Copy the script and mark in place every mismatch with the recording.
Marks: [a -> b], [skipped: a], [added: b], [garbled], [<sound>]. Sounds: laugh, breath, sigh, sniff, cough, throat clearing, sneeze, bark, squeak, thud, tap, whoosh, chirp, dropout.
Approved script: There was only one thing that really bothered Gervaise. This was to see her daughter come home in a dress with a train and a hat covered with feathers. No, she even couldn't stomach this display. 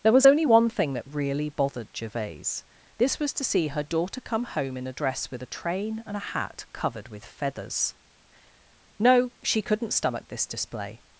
There was only one thing that really bothered Gervaise. This was to see her daughter come home in a dress with a train and a hat covered with feathers. No, she [skipped: even] couldn't stomach this display.